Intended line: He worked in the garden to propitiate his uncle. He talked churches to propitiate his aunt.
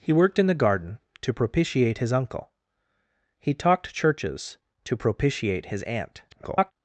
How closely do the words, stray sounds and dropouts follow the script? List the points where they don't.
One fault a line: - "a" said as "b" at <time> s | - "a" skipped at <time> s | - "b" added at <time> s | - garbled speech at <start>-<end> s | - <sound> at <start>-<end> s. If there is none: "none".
- garbled speech at 6.3-6.7 s